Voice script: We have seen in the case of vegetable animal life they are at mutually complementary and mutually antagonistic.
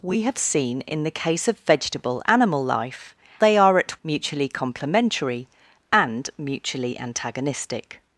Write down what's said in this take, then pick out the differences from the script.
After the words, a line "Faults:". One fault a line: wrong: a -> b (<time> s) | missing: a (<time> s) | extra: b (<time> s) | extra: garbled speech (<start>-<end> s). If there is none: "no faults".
We have seen in the case of vegetable animal life they are at mutually complementary and mutually antagonistic.
Faults:
no faults